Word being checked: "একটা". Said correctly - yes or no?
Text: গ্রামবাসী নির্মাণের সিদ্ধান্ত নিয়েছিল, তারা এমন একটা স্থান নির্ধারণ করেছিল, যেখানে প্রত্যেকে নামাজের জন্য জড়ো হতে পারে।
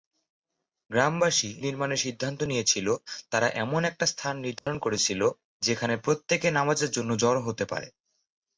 yes